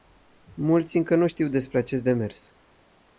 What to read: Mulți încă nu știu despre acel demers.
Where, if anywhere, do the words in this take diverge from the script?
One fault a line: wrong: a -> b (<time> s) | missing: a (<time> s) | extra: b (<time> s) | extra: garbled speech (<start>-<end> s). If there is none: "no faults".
wrong: acel -> acest (1.8 s)